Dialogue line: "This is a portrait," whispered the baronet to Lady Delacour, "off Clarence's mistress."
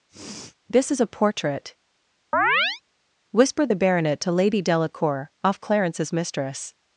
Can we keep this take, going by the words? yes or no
yes